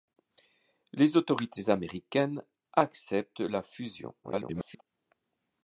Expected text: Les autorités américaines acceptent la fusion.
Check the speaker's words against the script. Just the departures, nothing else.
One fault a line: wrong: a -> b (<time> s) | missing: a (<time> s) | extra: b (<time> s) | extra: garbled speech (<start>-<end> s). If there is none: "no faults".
extra: garbled speech (4.2-4.8 s)